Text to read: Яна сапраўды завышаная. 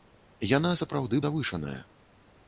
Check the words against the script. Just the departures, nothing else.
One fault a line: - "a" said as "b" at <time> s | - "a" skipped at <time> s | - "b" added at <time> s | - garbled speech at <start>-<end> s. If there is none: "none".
none